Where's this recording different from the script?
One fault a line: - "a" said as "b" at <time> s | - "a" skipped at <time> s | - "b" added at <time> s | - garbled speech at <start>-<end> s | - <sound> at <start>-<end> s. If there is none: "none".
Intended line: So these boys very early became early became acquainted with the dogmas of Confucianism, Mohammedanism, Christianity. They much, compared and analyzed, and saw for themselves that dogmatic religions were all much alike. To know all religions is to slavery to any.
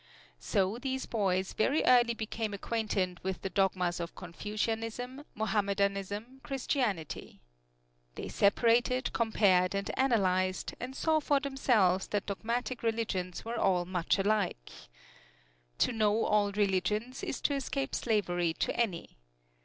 - "early became" skipped at 2.5 s
- "much" said as "separated" at 8.3 s
- "escape" added at 17.5 s